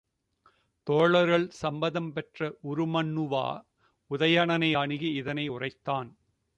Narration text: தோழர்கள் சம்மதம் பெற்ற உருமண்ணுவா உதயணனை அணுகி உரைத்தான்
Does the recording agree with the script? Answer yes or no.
no